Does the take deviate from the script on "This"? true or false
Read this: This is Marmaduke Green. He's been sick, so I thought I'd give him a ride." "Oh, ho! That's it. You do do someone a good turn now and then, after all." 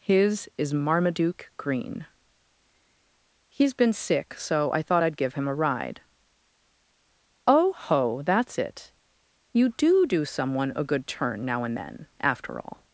true